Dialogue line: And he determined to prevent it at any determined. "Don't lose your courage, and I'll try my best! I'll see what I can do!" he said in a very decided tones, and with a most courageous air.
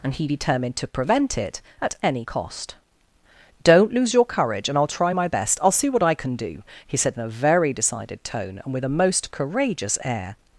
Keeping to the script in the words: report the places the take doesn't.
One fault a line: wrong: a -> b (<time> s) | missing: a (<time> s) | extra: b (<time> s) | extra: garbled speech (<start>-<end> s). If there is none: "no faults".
wrong: determined -> cost (2.2 s)
wrong: tones -> tone (8.2 s)